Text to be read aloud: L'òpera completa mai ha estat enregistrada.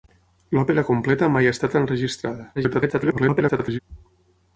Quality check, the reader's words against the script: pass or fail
fail